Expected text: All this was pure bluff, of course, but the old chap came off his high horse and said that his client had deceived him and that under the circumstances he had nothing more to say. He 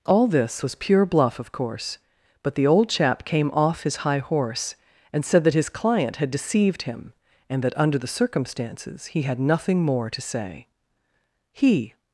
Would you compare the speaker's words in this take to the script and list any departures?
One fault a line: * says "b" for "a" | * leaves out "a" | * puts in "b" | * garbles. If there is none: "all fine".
all fine